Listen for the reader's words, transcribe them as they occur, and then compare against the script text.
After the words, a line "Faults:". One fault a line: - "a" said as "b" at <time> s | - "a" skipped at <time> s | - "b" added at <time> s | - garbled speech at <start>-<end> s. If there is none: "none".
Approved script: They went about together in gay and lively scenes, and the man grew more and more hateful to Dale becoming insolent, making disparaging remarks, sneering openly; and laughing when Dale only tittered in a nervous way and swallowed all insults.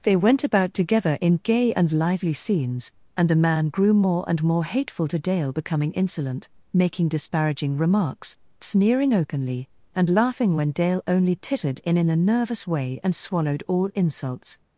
They went about together in gay and lively scenes, and the man grew more and more hateful to Dale becoming insolent, making disparaging remarks, sneering openly; and laughing when Dale only tittered in in a nervous way and swallowed all insults.
Faults:
- "in" added at 12.0 s